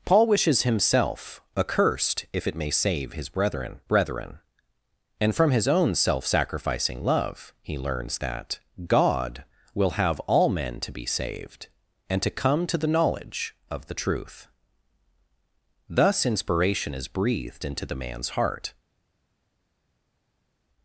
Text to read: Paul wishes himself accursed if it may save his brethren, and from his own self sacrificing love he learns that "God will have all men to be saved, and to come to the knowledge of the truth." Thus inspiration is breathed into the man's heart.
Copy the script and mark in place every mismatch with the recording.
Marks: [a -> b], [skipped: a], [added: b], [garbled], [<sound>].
Paul wishes himself accursed if it may save his brethren, [added: brethren] and from his own self sacrificing love he learns that "God will have all men to be saved, and to come to the knowledge of the truth." Thus inspiration is breathed into the man's heart.